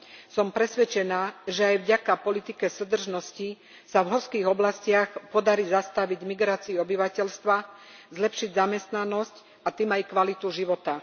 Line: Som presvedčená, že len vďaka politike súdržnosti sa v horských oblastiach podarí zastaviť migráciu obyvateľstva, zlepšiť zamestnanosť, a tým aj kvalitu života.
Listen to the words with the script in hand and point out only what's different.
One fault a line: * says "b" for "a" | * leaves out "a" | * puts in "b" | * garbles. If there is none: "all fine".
* says "aj" for "len"